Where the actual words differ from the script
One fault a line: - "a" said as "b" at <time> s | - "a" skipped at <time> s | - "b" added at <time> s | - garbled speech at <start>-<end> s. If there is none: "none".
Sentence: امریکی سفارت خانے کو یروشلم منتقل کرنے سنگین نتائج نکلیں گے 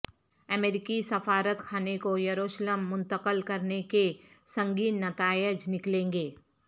- "کے" added at 3.9 s